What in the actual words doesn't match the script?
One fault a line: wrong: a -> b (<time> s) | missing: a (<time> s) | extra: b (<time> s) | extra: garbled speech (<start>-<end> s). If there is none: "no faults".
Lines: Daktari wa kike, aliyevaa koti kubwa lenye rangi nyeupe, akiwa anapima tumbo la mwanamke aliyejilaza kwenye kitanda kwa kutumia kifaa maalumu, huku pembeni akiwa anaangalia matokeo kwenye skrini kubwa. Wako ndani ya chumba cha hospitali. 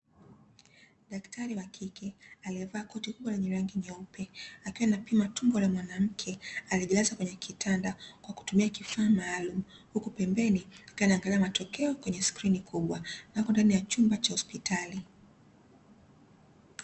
no faults